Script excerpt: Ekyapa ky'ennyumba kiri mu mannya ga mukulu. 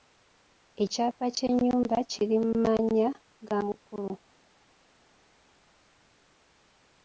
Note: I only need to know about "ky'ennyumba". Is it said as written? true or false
true